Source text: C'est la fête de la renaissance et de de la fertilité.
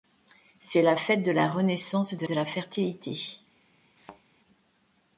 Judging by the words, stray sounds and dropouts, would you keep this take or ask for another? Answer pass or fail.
fail